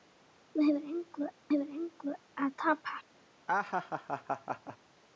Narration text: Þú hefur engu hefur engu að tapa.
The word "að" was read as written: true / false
true